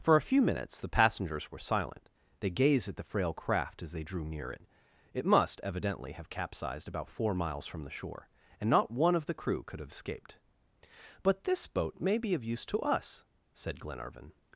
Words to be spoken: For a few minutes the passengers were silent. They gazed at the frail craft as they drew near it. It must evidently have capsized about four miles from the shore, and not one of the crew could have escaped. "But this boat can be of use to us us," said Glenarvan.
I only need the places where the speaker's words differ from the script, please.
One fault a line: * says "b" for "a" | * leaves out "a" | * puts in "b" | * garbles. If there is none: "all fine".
* says "may" for "can"
* leaves out "us"